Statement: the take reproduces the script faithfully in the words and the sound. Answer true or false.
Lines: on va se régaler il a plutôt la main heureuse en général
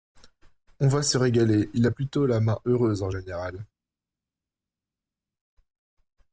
true